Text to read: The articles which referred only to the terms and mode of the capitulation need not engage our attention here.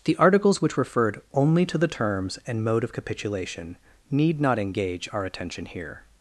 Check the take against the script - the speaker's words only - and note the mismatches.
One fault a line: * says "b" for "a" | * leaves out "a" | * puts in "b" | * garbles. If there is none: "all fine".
* leaves out "the"